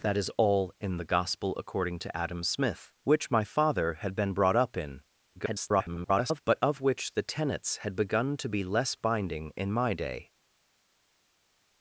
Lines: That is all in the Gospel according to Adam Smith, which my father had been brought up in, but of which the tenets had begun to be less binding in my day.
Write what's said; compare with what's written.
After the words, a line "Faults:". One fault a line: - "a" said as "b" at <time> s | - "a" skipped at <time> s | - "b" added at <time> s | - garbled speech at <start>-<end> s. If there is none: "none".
That is all in the Gospel according to Adam Smith, which my father had been brought up in, [garbled] but of which the tenets had begun to be less binding in my day.
Faults:
- garbled speech at 5.4-6.4 s